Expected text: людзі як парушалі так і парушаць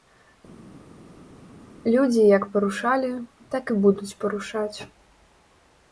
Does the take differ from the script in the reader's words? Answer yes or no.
yes